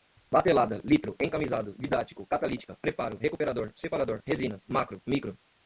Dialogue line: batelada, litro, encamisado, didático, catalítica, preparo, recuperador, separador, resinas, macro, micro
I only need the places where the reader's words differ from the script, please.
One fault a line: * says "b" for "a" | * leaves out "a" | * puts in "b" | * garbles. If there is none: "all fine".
all fine